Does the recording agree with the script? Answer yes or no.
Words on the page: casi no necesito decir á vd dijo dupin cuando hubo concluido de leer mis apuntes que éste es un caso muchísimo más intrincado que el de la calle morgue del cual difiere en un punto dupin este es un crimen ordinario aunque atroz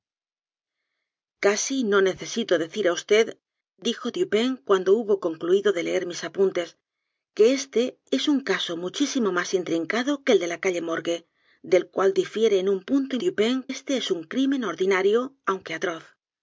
yes